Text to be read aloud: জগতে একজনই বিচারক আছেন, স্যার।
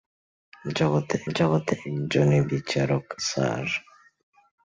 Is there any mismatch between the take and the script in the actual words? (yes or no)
yes